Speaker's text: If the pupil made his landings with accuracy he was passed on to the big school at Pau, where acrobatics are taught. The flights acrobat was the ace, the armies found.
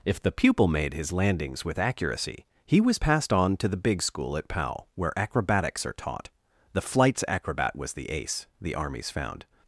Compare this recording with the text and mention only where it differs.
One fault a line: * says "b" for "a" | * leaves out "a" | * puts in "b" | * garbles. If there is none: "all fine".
all fine